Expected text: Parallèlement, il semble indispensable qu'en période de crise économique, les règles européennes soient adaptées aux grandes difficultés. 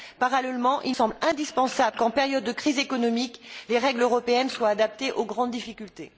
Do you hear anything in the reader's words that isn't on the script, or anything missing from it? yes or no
no